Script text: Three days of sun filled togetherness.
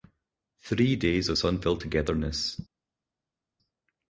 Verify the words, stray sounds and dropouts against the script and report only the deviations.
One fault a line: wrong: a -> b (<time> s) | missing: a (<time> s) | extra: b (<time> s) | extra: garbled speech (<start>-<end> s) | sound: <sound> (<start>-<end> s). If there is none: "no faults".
no faults